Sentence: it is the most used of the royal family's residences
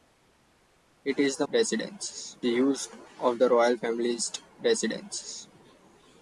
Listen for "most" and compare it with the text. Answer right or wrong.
wrong